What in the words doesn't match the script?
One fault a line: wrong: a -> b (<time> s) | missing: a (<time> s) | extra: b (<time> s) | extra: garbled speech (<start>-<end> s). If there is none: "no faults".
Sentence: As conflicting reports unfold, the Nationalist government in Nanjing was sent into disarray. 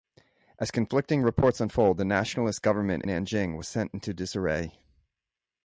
missing: in (3.0 s)